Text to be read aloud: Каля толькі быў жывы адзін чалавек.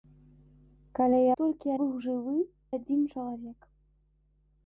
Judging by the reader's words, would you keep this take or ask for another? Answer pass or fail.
pass